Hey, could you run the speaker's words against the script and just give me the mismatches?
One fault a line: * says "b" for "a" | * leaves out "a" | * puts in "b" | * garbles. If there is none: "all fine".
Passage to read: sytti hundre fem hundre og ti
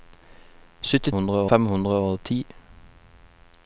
all fine